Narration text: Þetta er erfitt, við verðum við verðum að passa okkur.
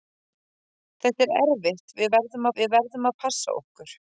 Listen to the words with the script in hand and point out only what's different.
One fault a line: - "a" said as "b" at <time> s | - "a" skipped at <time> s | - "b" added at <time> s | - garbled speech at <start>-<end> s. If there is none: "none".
none